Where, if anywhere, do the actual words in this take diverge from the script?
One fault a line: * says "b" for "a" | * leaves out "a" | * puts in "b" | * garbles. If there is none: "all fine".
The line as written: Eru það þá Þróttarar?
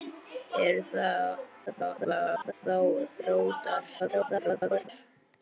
* garbles
* garbles